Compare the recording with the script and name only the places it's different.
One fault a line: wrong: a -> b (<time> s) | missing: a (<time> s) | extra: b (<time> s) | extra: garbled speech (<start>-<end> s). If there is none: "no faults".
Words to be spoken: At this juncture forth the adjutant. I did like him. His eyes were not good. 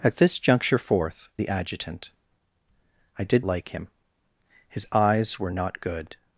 no faults